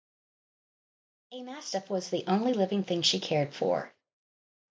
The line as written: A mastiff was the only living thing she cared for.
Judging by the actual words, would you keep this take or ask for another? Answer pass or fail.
pass